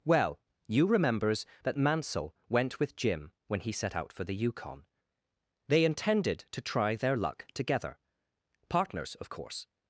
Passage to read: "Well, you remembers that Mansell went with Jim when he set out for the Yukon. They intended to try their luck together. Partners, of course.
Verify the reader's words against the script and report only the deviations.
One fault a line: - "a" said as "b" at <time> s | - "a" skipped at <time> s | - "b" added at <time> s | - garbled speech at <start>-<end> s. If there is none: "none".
none